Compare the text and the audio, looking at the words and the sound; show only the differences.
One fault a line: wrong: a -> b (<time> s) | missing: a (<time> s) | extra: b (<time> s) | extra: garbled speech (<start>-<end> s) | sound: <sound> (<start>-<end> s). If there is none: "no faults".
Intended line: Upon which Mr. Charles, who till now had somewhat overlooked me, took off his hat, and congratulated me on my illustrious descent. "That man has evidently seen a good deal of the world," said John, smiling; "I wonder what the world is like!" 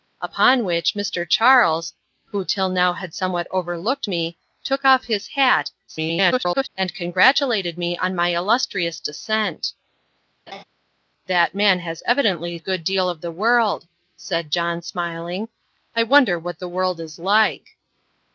extra: garbled speech (5.9-6.7 s)
sound: laugh (10.5-10.6 s)
missing: seen (12.6 s)